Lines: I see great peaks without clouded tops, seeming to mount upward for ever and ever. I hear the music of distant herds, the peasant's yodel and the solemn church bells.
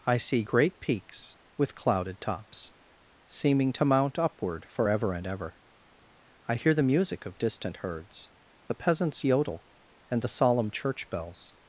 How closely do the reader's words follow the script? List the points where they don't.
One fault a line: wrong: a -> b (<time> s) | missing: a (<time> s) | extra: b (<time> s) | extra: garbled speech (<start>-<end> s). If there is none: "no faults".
wrong: without -> with (1.6 s)